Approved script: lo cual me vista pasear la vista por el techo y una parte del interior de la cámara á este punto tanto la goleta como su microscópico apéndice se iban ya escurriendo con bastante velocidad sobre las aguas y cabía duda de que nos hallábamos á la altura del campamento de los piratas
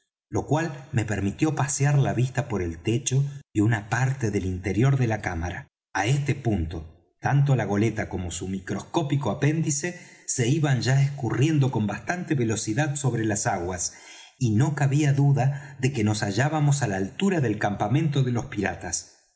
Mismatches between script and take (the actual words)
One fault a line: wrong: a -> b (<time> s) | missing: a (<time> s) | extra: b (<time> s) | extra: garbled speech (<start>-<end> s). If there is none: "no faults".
wrong: vista -> permitió (1.1 s)
extra: no (14.5 s)